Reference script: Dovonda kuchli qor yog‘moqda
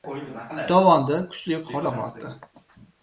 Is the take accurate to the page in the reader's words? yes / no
yes